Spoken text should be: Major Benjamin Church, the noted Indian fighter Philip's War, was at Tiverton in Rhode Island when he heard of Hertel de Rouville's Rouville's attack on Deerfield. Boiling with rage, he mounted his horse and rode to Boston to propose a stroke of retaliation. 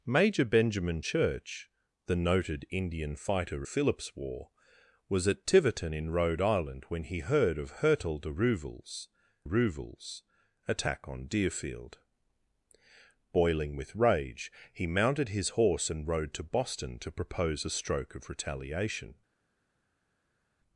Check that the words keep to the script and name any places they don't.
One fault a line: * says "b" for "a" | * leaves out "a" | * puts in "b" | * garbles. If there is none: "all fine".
all fine